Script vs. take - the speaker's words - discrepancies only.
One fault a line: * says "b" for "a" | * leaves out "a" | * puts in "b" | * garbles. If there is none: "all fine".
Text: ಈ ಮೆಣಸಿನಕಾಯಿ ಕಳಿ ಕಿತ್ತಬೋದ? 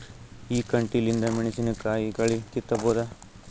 * puts in "ಕಂಟಿಲಿಂದ"